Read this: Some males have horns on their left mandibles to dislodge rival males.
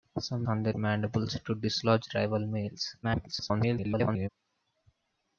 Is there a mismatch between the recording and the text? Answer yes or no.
yes